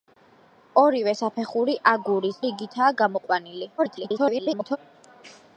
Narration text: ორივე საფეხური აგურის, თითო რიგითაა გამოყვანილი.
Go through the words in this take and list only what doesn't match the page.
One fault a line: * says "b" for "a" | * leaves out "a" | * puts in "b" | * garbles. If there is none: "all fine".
* leaves out "თითო"
* garbles